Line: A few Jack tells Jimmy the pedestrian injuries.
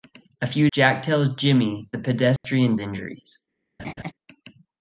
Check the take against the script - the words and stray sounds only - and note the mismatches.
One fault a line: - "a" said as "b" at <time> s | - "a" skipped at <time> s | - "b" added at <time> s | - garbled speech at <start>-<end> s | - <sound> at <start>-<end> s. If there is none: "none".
- dropout at 2.4-2.4 s
- laugh at 3.8-4.1 s